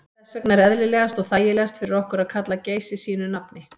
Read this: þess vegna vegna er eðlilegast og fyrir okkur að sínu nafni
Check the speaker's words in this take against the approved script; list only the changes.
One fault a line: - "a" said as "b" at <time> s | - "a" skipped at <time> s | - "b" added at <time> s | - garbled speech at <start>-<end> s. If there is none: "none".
- "vegna" skipped at 0.6 s
- "þægilegast" added at 1.3 s
- "kalla geysi" added at 2.3 s